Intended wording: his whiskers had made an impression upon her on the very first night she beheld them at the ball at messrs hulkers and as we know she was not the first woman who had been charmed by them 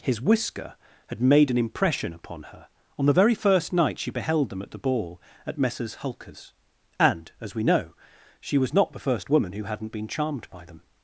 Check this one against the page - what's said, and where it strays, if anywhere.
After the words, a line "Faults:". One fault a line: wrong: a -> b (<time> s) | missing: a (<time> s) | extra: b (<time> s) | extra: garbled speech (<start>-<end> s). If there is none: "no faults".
his whisker had made an impression upon her on the very first night she beheld them at the ball at messrs hulkers and as we know she was not the first woman who hadn't been charmed by them
Faults:
wrong: whiskers -> whisker (0.2 s)
wrong: had -> hadn't (9.6 s)